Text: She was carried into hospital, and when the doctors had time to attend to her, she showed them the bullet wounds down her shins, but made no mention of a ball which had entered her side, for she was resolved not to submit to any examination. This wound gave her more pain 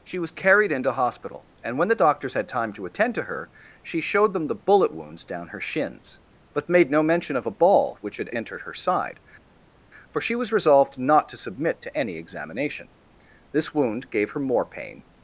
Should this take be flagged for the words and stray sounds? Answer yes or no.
no